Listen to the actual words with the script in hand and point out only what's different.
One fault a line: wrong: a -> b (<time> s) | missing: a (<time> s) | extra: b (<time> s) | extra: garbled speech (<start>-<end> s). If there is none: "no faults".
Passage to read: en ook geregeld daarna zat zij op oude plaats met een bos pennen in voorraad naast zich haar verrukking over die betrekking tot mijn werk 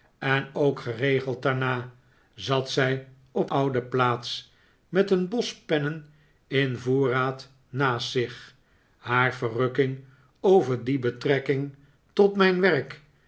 no faults